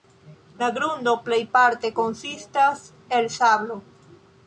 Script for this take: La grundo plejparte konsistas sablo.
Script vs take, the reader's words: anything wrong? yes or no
yes